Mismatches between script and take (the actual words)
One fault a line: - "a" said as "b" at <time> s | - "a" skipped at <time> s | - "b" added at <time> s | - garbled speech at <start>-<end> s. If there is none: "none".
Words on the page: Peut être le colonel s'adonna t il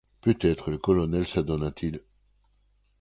none